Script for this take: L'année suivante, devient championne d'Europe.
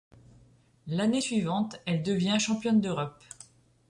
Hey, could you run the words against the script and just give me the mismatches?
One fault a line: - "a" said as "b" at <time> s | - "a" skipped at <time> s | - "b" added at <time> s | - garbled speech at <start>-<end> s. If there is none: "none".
- "elle" added at 1.9 s